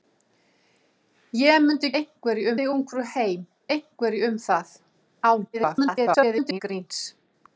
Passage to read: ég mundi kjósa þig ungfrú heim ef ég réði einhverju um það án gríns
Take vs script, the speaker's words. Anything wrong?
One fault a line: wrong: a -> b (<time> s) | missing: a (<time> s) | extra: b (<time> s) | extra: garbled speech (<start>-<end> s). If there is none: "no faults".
wrong: kjósa -> einhverju (2.0 s)
missing: ef ég réði (3.5 s)
extra: garbled speech (5.5-6.6 s)